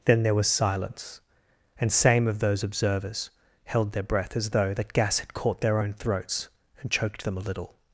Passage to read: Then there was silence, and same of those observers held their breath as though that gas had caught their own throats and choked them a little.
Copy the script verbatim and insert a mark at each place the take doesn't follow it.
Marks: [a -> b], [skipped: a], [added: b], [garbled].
Then there was silence, and same of those observers held their breath as though that gas had caught their own throats and choked them a little.